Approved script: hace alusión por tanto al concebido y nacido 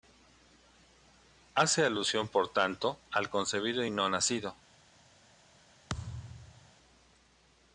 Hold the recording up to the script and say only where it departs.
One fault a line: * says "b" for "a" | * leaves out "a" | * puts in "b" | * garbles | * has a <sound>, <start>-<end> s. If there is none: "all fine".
* puts in "no"
* has a thud, 5.9-6.7 s